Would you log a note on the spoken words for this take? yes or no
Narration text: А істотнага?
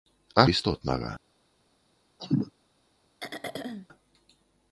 no